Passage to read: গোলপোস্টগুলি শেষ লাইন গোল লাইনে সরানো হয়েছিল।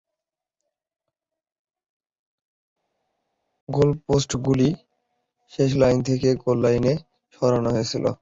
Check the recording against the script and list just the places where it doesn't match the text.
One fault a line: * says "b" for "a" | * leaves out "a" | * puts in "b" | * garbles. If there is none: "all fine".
* puts in "থেকে"